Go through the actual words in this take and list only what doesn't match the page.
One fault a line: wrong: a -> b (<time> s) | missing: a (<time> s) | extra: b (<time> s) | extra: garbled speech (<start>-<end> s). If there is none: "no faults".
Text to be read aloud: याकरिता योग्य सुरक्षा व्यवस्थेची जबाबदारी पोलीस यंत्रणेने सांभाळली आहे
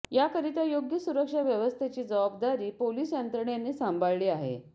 no faults